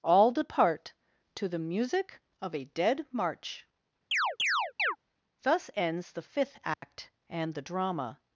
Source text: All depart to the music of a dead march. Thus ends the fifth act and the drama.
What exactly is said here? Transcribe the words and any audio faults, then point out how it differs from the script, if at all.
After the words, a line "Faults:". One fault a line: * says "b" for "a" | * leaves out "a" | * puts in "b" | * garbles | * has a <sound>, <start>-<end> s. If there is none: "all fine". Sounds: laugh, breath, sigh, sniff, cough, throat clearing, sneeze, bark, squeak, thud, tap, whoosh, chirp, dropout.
All depart to the music of a dead march. Thus ends the fifth act and the drama.
Faults:
* has a chirp, 4.1-5.0 s
* has a dropout, 6.7-6.8 s